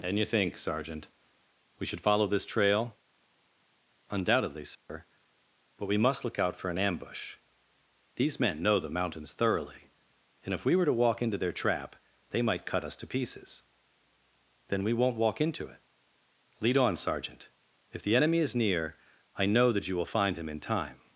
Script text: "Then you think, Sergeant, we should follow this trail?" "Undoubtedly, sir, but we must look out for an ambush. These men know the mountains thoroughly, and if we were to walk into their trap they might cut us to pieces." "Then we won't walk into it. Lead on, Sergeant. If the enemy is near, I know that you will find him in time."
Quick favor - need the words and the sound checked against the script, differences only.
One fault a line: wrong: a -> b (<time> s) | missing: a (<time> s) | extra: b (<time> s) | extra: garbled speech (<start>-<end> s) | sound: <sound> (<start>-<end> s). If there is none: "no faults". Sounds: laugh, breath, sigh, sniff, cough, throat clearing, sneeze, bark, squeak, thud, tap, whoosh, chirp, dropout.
wrong: Then -> And (0.0 s)
sound: dropout (4.8-4.9 s)